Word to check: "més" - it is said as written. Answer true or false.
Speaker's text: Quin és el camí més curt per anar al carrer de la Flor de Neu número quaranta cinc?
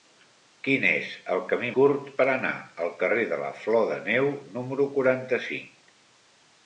false